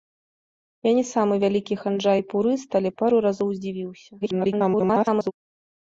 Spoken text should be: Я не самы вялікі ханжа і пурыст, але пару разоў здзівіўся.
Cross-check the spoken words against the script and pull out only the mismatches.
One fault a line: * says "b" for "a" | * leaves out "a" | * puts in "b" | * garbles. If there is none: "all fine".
* garbles